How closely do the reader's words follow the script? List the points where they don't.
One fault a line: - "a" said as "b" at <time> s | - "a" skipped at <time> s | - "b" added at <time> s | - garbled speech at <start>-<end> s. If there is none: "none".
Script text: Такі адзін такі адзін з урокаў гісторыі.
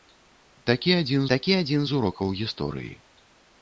none